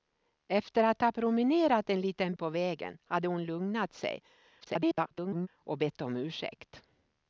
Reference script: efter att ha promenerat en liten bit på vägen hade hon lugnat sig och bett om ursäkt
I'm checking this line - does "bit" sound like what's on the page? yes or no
no